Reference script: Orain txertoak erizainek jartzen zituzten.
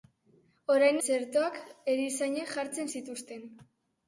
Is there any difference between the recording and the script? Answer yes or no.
no